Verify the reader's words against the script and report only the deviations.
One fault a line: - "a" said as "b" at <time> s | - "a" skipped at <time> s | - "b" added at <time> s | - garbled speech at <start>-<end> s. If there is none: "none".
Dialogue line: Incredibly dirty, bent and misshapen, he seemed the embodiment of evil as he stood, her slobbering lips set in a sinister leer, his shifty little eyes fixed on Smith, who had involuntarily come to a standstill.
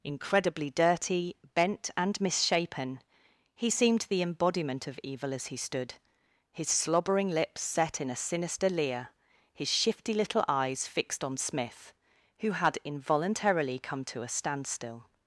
- "her" said as "his" at 6.5 s